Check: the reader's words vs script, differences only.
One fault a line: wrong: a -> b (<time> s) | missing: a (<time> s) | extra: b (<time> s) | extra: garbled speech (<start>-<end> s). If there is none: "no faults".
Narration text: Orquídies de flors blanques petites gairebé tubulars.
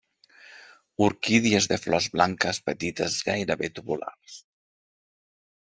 no faults